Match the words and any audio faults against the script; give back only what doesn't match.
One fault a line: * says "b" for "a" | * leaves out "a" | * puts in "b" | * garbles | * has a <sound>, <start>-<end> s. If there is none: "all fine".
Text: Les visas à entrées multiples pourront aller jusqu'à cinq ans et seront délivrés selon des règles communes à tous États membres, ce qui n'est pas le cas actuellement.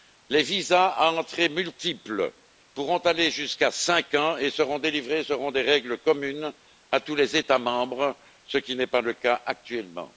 * puts in "les"